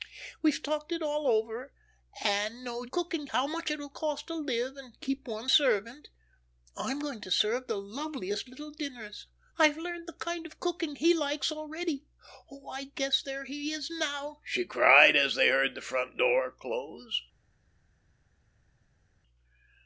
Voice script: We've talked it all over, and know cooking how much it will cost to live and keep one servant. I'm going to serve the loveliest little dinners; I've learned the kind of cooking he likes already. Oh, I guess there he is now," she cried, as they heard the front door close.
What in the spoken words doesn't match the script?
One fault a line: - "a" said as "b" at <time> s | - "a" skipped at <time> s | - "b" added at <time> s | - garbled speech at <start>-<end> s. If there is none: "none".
none